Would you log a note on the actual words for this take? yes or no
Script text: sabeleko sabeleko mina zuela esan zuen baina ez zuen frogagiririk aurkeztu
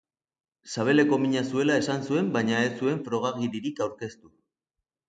yes